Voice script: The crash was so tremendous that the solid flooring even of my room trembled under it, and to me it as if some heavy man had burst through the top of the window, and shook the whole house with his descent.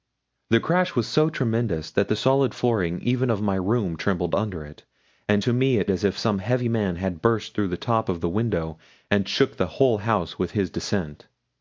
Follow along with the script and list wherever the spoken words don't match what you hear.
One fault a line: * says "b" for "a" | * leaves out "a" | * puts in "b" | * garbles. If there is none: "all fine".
all fine